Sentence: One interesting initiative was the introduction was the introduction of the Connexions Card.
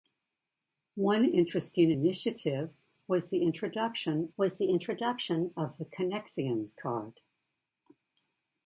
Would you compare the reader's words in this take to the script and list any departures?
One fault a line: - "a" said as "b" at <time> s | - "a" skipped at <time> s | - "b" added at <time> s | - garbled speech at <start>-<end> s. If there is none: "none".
none